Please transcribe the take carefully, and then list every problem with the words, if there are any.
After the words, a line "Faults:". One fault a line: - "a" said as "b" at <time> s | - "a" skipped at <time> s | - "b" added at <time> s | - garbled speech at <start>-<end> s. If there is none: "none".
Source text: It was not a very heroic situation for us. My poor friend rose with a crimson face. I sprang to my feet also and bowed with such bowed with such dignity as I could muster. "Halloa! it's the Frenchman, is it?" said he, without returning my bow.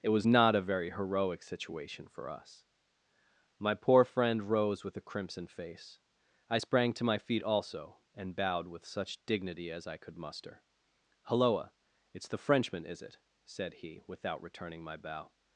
It was not a very heroic situation for us. My poor friend rose with a crimson face. I sprang to my feet also and bowed with such dignity as I could muster. "Halloa! it's the Frenchman, is it?" said he, without returning my bow.
Faults:
- "bowed with such" skipped at 9.2 s